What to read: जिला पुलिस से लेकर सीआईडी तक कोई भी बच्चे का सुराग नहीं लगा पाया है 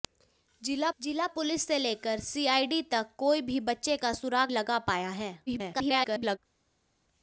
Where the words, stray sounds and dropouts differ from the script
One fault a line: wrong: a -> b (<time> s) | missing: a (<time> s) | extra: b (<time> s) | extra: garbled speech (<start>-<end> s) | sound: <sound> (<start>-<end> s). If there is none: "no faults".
extra: जिला (1.0 s)
missing: नहीं (4.5 s)
extra: garbled speech (5.5-6.4 s)